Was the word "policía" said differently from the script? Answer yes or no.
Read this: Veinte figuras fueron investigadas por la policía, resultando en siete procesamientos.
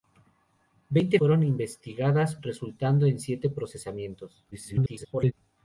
yes